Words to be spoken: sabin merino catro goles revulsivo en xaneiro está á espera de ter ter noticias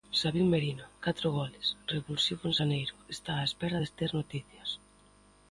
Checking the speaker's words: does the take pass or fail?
fail